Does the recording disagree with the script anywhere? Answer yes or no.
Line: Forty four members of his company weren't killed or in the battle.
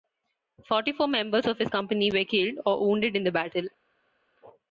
yes